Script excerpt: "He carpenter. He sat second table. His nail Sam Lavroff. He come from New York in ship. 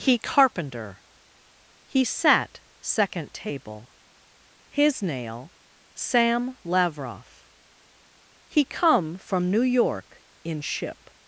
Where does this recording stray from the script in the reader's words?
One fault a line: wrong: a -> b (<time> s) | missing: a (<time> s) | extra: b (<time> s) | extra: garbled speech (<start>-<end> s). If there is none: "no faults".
no faults